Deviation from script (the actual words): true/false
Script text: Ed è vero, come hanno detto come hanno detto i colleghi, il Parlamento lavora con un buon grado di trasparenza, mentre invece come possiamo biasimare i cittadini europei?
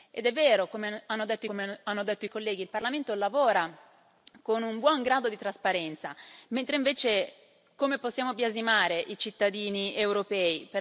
false